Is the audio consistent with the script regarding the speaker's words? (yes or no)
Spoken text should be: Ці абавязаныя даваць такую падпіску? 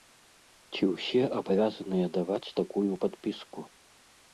no